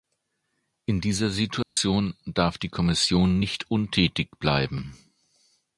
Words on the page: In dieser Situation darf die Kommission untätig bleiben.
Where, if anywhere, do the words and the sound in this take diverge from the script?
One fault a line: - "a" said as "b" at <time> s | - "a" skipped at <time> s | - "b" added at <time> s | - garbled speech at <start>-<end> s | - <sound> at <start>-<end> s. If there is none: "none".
- dropout at 1.6-1.8 s
- "nicht" added at 3.4 s